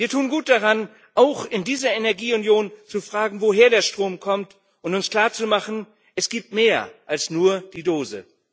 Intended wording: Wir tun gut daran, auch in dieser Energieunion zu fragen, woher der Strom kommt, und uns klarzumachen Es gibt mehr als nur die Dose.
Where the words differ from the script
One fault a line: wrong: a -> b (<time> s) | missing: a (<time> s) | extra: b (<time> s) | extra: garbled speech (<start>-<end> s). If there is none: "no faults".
no faults